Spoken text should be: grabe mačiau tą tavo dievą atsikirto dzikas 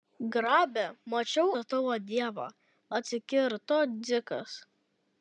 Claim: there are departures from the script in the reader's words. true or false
false